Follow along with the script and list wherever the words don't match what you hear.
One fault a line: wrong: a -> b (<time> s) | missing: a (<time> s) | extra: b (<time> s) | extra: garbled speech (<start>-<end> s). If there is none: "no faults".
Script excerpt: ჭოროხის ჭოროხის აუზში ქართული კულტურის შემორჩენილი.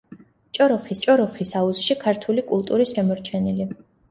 no faults